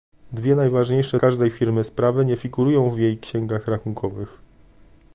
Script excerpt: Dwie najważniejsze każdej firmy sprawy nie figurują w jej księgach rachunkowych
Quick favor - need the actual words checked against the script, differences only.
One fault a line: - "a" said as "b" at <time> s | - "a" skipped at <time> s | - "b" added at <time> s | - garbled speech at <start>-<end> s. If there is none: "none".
none